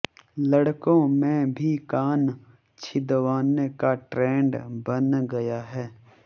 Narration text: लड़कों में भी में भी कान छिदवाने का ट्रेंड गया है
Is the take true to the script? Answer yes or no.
no